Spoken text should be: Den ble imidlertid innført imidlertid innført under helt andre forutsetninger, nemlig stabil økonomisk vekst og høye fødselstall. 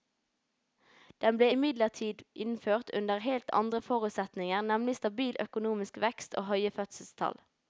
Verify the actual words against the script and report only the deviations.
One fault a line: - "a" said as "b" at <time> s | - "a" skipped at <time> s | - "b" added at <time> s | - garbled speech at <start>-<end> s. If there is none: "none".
- "imidlertid innført" skipped at 2.9 s